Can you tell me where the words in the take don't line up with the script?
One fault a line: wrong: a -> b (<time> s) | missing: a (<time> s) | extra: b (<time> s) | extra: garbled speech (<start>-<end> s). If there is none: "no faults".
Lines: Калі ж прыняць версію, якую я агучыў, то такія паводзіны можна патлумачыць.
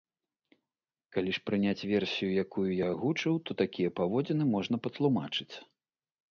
no faults